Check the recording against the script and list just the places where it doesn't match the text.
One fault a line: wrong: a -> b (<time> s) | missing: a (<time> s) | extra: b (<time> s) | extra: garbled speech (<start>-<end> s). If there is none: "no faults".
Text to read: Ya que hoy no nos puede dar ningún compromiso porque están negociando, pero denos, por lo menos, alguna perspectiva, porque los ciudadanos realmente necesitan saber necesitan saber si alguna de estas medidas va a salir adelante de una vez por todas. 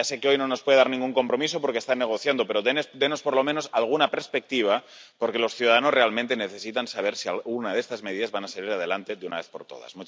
extra: sé (0.1 s)
missing: necesitan saber (7.2 s)